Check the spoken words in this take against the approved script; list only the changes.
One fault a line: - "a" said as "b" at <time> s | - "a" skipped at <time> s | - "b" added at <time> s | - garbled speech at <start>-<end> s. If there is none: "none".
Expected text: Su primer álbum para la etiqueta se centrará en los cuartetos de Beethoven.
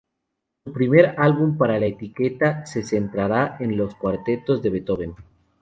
none